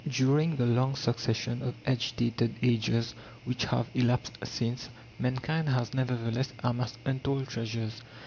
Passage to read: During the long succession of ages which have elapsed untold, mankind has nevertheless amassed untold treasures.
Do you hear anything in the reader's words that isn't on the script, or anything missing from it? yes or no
yes